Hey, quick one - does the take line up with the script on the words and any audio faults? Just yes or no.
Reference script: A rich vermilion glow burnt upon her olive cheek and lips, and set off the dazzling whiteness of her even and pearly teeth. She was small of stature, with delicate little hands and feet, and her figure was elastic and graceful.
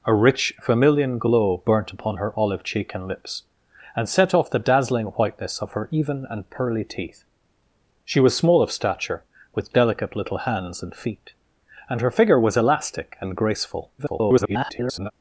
no